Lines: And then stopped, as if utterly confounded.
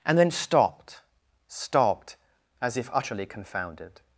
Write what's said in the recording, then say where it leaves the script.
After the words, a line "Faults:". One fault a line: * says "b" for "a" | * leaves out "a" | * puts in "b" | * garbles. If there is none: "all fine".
And then stopped stopped, as if utterly confounded.
Faults:
* puts in "stopped"